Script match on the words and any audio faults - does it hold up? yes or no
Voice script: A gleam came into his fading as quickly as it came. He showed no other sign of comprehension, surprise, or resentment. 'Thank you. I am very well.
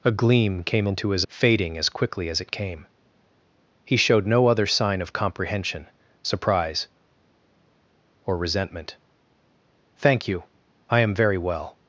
yes